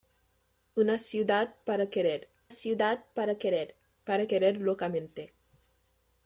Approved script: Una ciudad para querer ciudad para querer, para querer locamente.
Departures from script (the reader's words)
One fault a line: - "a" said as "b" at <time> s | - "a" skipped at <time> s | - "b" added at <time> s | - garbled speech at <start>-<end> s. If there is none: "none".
none